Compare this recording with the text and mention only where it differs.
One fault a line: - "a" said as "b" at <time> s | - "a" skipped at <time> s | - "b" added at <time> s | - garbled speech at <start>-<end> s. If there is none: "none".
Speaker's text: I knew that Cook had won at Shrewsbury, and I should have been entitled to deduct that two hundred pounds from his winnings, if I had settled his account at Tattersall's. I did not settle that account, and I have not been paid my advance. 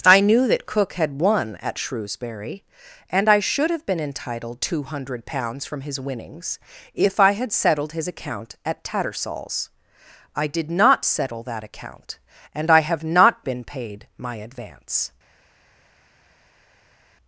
- "to deduct that" skipped at 4.6 s